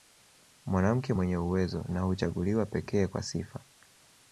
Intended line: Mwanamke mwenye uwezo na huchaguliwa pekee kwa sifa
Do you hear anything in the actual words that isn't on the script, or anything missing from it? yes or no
no